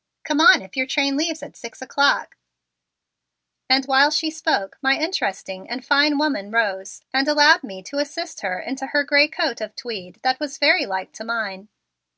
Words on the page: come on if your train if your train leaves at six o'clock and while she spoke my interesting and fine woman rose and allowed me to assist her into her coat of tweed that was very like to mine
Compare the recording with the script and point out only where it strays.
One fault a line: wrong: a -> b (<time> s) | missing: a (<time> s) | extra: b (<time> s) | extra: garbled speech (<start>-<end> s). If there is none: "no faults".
missing: if your train (1.1 s)
extra: gray (9.0 s)